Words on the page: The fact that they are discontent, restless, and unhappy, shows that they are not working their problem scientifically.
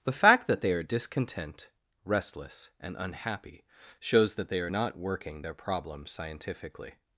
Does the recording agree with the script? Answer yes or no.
yes